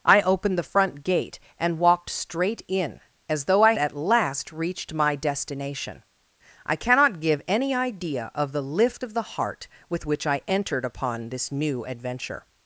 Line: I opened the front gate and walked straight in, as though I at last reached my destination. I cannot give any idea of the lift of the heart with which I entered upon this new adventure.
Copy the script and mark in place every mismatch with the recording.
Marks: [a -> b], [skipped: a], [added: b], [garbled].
I opened the front gate and walked straight in, as though I at last reached my destination. I cannot give any idea of the lift of the heart with which I entered upon this new adventure.